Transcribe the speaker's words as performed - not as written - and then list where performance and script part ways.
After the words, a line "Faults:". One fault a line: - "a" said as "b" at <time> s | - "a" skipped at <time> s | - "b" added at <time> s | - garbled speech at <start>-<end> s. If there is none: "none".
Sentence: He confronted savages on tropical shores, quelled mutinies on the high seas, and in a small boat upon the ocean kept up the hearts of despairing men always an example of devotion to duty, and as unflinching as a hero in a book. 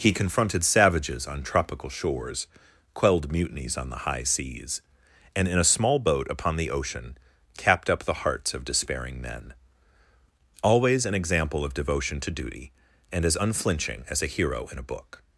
He confronted savages on tropical shores, quelled mutinies on the high seas, and in a small boat upon the ocean capped up the hearts of despairing men always an example of devotion to duty, and as unflinching as a hero in a book.
Faults:
- "kept" said as "capped" at 7.5 s